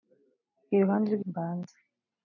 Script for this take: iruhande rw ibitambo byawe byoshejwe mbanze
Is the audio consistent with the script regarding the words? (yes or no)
no